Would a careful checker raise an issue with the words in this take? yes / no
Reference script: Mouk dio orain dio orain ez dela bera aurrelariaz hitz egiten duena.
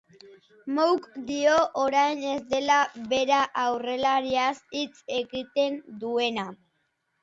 yes